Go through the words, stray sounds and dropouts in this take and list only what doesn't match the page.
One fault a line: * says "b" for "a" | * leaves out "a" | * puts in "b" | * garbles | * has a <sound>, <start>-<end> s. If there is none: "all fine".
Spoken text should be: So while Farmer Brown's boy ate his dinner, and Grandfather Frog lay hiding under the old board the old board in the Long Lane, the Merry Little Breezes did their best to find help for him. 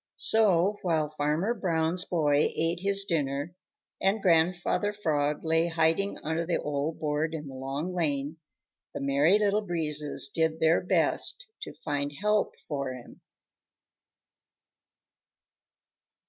* leaves out "the old board"